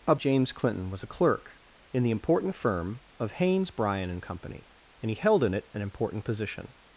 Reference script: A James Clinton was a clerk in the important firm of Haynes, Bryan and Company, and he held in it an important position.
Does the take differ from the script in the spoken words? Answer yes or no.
no